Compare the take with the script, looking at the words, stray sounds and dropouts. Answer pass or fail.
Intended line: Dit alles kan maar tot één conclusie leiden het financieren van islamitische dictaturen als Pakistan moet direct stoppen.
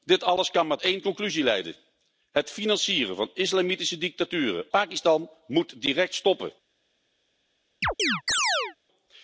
fail